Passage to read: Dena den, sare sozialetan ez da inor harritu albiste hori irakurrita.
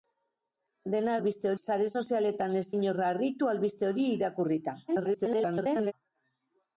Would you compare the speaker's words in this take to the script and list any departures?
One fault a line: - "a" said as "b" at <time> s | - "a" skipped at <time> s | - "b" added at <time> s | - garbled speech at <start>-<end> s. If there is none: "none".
- "den" said as "albiste" at 1.2 s
- "da" skipped at 2.6 s
- garbled speech at 4.9-5.9 s